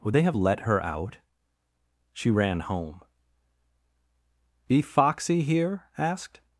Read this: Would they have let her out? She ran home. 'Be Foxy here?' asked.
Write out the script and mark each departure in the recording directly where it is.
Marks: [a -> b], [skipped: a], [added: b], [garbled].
Would they have let her out? She ran home. 'Be Foxy here?' asked.